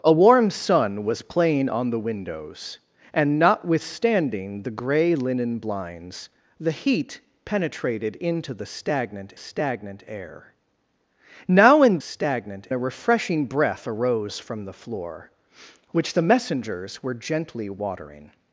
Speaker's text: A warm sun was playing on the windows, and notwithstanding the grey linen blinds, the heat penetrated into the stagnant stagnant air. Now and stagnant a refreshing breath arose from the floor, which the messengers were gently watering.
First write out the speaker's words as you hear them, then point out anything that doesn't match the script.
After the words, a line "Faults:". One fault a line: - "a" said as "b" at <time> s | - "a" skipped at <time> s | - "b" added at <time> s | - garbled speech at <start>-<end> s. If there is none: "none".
A warm sun was playing on the windows, and notwithstanding the grey linen blinds, the heat penetrated into the stagnant stagnant air. Now and stagnant a refreshing breath arose from the floor, which the messengers were gently watering.
Faults:
none